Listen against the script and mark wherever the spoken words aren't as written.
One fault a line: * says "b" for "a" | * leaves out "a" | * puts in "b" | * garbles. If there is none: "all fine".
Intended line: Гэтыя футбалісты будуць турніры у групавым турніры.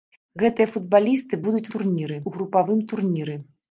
all fine